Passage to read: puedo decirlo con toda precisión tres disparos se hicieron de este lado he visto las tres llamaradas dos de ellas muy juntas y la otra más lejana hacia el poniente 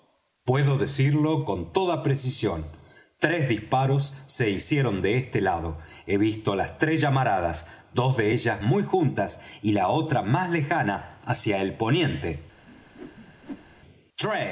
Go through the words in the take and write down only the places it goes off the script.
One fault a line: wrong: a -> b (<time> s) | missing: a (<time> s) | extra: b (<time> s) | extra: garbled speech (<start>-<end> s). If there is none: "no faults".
no faults